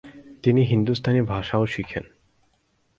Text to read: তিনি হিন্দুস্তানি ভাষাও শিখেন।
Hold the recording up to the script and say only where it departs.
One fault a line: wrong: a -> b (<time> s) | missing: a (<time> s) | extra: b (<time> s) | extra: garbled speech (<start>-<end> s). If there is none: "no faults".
no faults